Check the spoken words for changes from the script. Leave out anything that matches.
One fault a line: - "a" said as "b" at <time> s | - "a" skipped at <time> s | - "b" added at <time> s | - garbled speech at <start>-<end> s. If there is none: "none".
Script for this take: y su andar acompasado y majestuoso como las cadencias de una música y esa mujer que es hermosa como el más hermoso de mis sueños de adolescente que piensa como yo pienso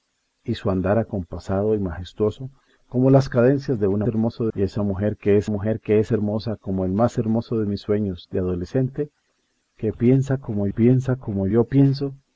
- "música" said as "hermoso" at 4.1 s
- "mujer que es" added at 5.5 s
- "piensa como" added at 10.7 s